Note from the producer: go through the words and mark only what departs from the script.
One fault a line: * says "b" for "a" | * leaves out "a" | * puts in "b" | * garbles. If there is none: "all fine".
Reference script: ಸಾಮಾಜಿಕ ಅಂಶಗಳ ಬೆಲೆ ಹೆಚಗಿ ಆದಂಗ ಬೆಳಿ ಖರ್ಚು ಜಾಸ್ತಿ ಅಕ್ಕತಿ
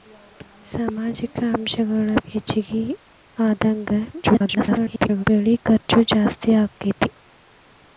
* leaves out "ಬೆಲೆ"
* garbles